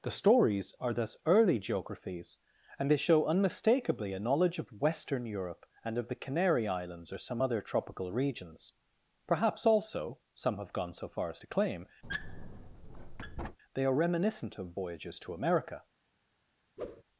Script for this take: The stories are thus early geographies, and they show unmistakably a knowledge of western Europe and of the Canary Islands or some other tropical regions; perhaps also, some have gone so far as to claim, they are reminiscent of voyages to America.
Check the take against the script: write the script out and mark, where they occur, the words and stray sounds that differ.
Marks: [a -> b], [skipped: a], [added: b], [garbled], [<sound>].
The stories are thus early geographies, and they show unmistakably a knowledge of western Europe and of the Canary Islands or some other tropical regions; perhaps also, some have gone so far as to claim, [squeak] they are reminiscent of voyages to America. [whoosh]